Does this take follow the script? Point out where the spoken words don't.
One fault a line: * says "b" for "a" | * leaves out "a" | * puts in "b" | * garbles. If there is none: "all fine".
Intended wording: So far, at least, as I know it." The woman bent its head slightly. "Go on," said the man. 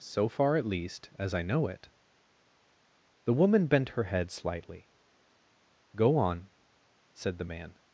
* says "her" for "its"